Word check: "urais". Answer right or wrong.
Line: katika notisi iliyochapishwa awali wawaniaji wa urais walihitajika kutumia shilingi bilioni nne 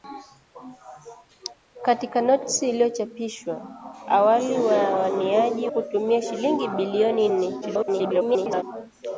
wrong